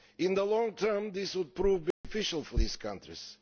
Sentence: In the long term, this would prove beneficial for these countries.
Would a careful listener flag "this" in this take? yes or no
no